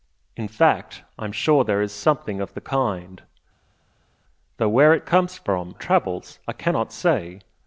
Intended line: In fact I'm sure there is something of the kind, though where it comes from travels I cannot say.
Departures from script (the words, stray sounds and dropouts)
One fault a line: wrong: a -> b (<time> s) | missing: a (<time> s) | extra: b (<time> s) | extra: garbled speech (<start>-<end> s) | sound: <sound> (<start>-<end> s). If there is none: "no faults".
no faults